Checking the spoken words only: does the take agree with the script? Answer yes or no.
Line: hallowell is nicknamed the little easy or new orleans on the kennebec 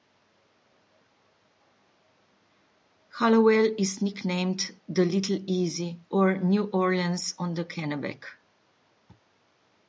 yes